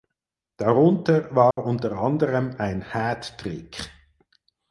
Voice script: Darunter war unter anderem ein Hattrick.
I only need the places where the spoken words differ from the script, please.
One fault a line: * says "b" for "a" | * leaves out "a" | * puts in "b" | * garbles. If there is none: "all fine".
all fine